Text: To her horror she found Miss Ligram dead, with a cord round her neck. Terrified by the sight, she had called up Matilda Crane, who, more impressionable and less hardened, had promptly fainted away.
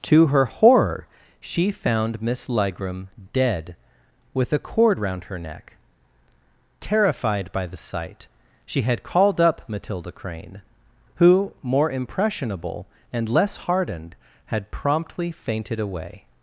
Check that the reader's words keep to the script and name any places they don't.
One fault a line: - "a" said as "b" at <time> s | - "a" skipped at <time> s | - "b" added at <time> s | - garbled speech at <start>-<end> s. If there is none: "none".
none